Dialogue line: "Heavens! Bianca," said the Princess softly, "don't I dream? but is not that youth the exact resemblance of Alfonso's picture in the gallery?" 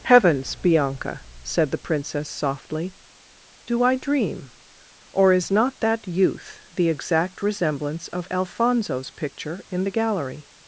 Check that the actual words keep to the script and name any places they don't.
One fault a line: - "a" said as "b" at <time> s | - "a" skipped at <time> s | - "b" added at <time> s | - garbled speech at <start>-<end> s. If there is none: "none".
- "don't" said as "do" at 3.6 s
- "but" said as "or" at 5.1 s